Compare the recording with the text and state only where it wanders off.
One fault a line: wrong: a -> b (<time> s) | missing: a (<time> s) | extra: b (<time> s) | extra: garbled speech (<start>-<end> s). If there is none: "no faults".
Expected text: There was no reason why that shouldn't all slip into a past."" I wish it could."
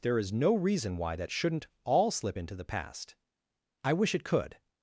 wrong: was -> is (0.2 s)
wrong: a -> the (2.5 s)